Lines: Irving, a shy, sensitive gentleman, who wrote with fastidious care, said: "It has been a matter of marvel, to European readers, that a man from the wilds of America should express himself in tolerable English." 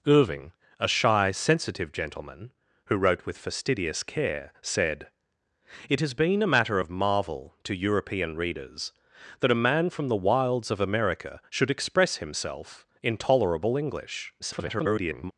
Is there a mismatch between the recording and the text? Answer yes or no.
yes